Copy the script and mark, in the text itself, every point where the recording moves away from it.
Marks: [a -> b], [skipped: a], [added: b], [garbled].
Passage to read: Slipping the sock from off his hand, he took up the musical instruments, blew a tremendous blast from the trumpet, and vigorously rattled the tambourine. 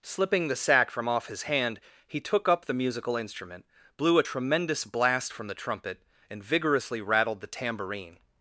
Slipping the [sock -> sack] from off his hand, he took up the musical [instruments, -> instrument] blew a tremendous blast from the trumpet, and vigorously rattled the tambourine.